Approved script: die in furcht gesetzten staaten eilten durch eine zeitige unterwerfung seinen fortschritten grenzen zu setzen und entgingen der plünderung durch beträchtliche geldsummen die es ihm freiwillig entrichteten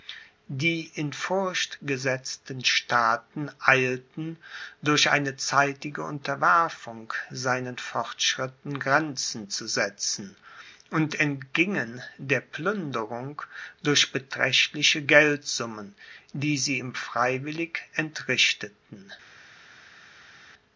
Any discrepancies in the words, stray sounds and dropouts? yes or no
yes